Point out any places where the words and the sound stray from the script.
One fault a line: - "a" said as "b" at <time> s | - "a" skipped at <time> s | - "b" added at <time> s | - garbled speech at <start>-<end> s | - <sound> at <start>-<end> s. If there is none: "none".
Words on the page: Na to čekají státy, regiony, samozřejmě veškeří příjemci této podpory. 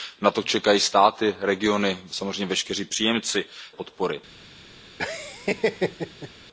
- "této" skipped at 3.5 s
- laugh at 5.0-6.3 s